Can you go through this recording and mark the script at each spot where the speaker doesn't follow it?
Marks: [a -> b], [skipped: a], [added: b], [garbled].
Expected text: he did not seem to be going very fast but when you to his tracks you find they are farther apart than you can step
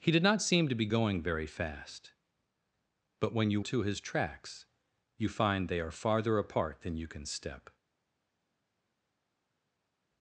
he did not seem to be going very fast but when you to his tracks you find they are farther apart than you can step